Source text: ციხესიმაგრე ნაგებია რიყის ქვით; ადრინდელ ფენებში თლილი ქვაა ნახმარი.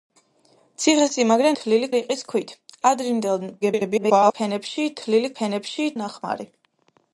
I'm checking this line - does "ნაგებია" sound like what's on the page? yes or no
no